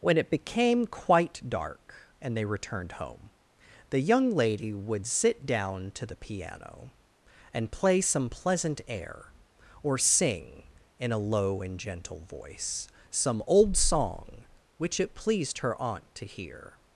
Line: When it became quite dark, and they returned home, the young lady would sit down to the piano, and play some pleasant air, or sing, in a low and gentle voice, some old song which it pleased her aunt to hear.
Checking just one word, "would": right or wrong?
right